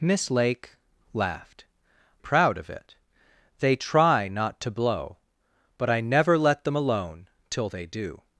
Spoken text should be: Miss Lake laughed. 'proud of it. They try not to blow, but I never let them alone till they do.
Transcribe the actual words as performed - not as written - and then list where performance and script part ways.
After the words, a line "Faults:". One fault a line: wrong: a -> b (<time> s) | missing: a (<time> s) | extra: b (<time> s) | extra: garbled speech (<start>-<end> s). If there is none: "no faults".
Miss Lake laughed. 'proud of it. They try not to blow, but I never let them alone till they do.
Faults:
no faults